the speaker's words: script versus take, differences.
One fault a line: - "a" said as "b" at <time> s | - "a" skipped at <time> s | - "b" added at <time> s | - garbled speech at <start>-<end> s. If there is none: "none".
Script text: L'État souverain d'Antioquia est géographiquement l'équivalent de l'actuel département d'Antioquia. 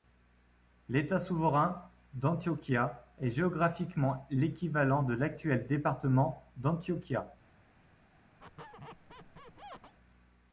none